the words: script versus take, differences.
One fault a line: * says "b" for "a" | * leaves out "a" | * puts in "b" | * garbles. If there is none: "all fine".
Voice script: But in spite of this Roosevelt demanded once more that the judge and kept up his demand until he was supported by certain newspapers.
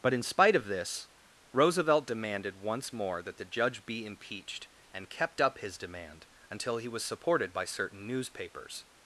* puts in "be impeached"